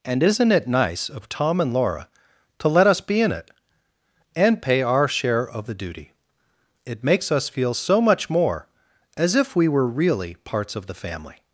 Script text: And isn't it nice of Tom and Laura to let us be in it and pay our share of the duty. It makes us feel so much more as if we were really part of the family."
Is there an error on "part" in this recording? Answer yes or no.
yes